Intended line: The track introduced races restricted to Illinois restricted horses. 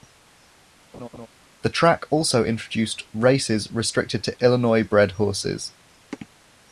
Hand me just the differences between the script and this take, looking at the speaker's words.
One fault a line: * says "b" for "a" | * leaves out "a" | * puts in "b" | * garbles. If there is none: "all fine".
* puts in "also"
* says "bred" for "restricted"